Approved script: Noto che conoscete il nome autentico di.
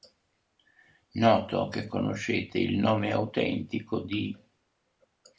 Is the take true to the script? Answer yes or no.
yes